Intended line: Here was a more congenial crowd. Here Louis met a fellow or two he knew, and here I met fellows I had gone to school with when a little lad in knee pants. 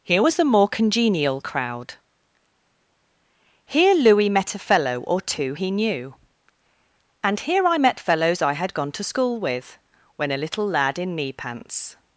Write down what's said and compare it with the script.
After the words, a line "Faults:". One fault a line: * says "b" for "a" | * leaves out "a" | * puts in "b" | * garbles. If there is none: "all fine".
Here was a more congenial crowd. Here Louis met a fellow or two he knew, and here I met fellows I had gone to school with when a little lad in knee pants.
Faults:
all fine